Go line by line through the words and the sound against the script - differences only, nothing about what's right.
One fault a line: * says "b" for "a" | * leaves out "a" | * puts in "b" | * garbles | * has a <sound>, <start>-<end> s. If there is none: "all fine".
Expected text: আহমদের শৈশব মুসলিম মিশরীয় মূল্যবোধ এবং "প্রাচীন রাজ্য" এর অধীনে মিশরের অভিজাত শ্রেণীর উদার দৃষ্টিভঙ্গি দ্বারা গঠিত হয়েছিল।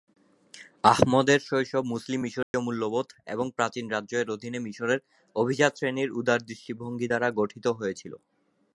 * has a dropout, 2.4-2.5 s